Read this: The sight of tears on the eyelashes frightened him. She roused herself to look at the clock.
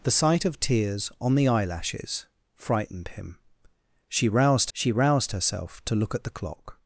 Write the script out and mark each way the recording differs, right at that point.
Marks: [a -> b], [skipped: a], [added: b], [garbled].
The sight of tears on the eyelashes frightened him. She roused [added: she roused] herself to look at the clock.